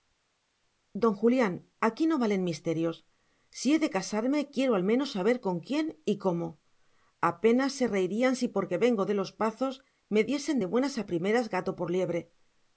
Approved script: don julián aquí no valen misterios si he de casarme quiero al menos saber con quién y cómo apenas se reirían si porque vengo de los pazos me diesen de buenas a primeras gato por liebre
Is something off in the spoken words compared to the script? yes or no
no